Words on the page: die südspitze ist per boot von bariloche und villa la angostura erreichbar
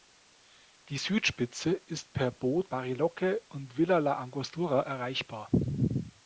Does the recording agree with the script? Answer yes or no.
no